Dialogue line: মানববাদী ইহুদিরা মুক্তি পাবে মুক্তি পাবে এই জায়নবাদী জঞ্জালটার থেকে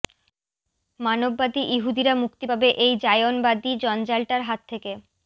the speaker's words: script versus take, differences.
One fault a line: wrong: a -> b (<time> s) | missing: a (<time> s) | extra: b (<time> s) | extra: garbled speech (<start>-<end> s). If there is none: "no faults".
missing: মুক্তি পাবে (2.7 s)
extra: হাত (4.4 s)